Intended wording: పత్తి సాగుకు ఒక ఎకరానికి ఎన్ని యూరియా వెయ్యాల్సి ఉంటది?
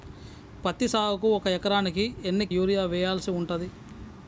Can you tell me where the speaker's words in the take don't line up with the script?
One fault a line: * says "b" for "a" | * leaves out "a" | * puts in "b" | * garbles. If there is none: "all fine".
all fine